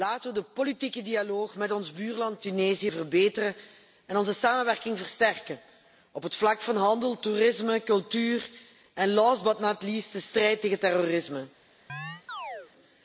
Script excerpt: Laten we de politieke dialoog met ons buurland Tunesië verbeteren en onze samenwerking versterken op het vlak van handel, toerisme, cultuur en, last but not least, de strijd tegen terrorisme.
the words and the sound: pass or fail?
fail